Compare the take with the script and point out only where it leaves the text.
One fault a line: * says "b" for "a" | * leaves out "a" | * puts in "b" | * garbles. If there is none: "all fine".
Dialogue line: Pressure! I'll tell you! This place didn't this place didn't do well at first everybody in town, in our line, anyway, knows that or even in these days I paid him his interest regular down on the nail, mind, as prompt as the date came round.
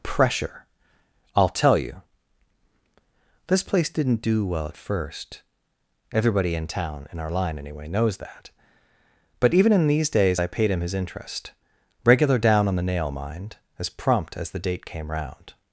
* leaves out "this place didn't"
* says "but" for "or"